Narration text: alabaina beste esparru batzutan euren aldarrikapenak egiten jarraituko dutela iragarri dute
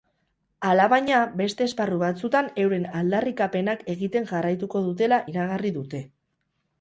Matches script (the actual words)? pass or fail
pass